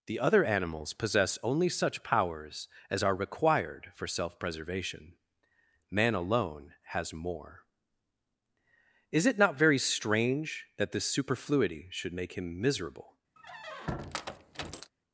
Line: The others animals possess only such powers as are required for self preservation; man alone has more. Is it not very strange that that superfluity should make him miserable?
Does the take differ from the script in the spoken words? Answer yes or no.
yes